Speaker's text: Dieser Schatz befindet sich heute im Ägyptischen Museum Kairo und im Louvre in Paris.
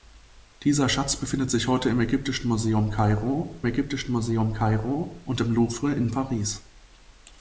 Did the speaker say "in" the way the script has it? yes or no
yes